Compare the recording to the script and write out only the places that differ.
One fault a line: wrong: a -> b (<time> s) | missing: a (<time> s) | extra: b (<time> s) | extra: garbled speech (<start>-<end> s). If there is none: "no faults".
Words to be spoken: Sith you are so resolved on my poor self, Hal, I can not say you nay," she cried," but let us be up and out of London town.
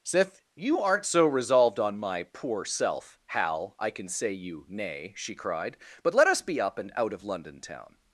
wrong: are -> aren't (0.8 s)
missing: not (4.1 s)